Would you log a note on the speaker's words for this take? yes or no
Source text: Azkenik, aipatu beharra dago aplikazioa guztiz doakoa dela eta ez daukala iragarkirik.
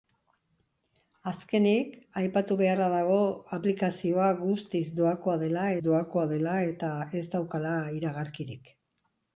yes